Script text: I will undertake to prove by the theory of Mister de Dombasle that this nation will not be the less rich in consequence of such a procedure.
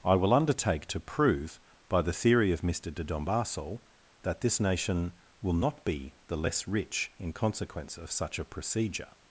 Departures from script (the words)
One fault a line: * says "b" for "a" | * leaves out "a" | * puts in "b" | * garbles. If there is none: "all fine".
all fine